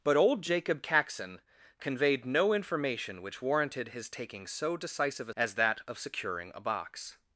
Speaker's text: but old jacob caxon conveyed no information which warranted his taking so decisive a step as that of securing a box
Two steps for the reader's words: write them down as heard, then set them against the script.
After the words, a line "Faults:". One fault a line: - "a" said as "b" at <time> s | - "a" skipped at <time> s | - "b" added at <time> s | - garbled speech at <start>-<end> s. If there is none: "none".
but old jacob caxon conveyed no information which warranted his taking so decisive a as that of securing a box
Faults:
- "step" skipped at 5.3 s